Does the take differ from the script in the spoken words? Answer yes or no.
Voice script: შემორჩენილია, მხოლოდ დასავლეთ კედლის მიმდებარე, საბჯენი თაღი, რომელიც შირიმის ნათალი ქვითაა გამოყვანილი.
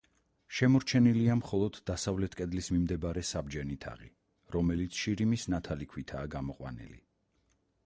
no